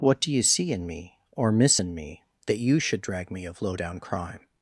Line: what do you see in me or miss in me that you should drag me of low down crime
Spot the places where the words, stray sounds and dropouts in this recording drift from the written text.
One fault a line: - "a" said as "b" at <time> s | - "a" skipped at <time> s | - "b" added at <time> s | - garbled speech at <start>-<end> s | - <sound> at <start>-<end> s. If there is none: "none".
none